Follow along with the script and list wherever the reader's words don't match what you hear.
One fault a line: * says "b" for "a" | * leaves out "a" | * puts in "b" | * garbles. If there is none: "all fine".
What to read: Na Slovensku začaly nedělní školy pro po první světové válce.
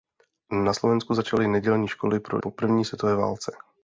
all fine